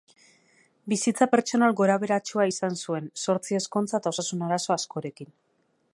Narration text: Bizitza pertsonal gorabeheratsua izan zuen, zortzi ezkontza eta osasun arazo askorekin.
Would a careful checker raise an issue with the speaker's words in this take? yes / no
no